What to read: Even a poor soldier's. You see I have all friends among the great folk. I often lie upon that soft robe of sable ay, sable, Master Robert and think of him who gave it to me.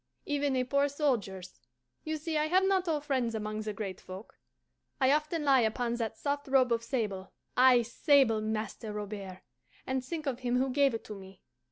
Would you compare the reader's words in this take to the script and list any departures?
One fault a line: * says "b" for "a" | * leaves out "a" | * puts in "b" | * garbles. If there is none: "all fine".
* puts in "not"